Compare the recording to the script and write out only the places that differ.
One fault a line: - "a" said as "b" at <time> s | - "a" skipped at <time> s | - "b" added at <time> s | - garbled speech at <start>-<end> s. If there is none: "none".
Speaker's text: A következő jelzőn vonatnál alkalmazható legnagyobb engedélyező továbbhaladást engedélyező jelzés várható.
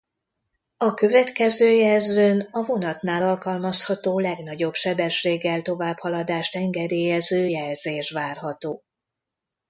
- "a" added at 2.5 s
- "engedélyező" said as "sebességgel" at 4.7 s